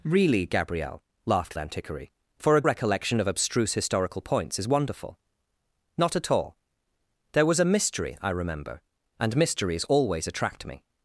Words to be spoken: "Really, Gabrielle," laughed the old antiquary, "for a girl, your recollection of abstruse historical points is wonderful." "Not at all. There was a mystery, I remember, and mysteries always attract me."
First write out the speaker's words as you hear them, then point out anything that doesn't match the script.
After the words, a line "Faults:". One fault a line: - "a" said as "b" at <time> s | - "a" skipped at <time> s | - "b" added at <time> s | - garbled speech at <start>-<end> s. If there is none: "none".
"Really, Gabrielle," laughed antiquary, "for a recollection of abstruse historical points is wonderful." "Not at all. There was a mystery, I remember, and mysteries always attract me."
Faults:
- "the old" skipped at 1.6 s
- "girl your" skipped at 2.6 s